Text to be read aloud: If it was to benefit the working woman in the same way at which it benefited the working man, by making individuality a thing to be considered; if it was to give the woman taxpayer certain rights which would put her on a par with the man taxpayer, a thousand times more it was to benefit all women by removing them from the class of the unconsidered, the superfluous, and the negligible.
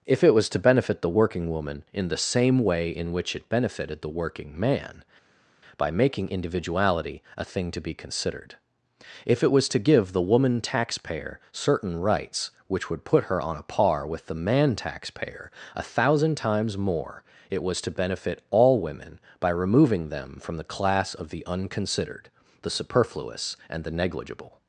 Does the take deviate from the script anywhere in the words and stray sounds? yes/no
yes